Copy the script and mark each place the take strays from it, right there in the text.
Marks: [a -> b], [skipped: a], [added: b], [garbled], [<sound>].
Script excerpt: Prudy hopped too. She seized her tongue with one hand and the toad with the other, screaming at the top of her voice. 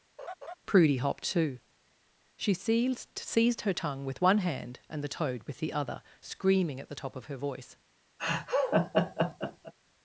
[laugh] Prudy hopped too. She seized [added: seized] her tongue with one hand and the toad with the other, screaming at the top of her voice. [laugh]